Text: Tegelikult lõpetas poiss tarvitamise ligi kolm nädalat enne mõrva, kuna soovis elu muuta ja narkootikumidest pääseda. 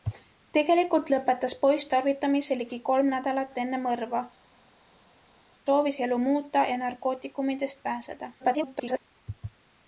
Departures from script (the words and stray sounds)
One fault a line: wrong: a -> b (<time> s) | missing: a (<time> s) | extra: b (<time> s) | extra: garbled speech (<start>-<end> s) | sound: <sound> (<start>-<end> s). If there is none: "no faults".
missing: kuna (4.2 s)
extra: garbled speech (8.4-9.0 s)